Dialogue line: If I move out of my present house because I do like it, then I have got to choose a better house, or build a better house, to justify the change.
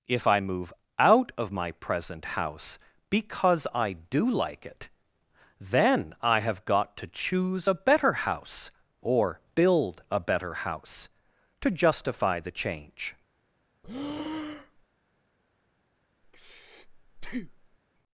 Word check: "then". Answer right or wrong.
right